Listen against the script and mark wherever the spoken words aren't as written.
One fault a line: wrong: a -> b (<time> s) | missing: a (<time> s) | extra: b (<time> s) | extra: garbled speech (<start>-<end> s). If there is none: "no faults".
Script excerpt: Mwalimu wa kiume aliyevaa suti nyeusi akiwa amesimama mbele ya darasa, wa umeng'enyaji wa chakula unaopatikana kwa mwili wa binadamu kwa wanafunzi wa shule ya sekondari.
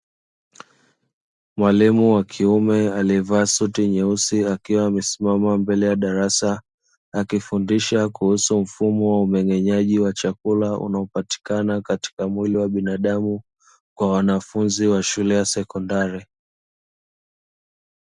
extra: akifundisha kuhusu mfumo (7.1 s)
wrong: kwa -> katika (11.8 s)